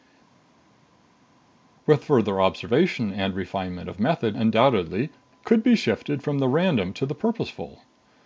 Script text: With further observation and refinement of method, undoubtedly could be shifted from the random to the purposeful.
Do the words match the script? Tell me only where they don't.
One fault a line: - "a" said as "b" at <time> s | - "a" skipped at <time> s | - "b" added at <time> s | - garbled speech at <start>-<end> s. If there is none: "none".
none